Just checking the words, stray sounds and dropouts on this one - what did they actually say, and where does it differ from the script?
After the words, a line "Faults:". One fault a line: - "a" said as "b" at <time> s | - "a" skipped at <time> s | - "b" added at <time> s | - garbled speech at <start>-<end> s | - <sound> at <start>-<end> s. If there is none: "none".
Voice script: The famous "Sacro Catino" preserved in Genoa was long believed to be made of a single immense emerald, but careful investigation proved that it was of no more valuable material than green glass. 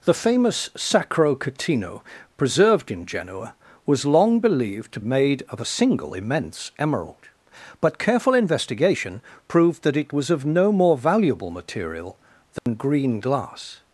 The famous "Sacro Catino" preserved in Genoa was long believed to made of a single immense emerald, but careful investigation proved that it was of no more valuable material than green glass.
Faults:
- "be" skipped at 5.0 s
- dropout at 12.6-12.7 s